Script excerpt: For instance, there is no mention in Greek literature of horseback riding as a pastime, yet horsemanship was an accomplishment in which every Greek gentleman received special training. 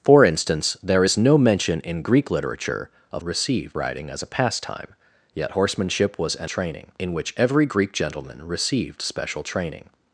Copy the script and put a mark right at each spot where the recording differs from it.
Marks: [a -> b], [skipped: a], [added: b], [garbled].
For instance, there is no mention in Greek literature of [horseback -> received] riding as a pastime, yet horsemanship was an [accomplishment -> training] in which every Greek gentleman received special training.